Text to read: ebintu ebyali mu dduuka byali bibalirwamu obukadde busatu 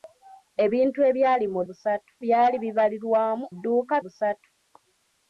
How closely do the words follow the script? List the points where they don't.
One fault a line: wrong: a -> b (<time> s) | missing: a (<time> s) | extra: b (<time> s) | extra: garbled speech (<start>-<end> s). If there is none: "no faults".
wrong: dduuka -> busatu (1.7 s)
wrong: obukadde -> dduuka (3.5 s)